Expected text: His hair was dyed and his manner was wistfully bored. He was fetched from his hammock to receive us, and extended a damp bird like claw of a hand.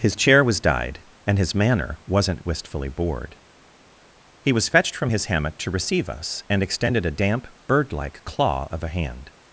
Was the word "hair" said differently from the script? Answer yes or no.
yes